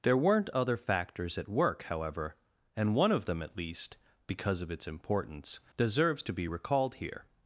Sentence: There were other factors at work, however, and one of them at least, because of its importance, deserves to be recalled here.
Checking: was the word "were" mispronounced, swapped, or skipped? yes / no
yes